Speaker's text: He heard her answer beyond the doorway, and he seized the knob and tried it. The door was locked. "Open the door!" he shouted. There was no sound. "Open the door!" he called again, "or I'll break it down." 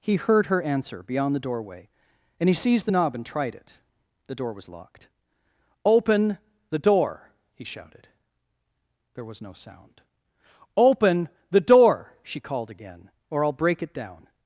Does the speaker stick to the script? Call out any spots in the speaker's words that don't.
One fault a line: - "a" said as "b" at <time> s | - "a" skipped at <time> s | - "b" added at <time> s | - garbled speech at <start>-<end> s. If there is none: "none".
- "he" said as "she" at 12.2 s